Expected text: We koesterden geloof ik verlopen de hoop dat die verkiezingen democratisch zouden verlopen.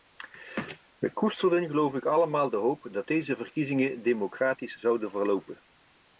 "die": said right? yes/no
no